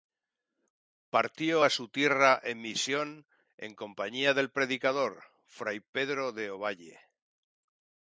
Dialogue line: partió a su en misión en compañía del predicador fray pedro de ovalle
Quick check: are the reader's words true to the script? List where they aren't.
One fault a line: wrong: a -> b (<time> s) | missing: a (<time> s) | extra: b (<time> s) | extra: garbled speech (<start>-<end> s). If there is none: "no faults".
extra: tierra (1.9 s)